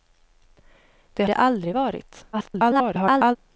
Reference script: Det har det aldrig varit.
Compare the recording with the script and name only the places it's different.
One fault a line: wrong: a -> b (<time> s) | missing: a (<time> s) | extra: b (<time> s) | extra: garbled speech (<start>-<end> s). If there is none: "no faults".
missing: har (1.2 s)
extra: garbled speech (2.3-3.4 s)